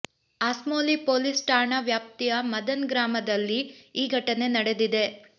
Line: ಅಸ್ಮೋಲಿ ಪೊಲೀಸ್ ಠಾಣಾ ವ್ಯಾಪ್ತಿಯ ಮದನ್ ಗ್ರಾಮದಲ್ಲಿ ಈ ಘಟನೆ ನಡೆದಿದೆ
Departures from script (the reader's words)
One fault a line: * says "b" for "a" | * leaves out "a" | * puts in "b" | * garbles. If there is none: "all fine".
all fine